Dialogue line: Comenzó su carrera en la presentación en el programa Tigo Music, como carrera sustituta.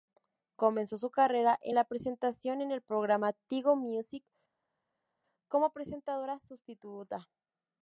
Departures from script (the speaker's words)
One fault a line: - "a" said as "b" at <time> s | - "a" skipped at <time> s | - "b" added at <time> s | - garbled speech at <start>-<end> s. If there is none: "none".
- "carrera" said as "presentadora" at 5.7 s